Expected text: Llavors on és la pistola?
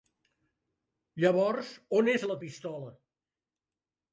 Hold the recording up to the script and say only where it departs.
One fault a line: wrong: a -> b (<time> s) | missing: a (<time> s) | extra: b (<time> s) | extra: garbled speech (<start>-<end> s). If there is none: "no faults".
no faults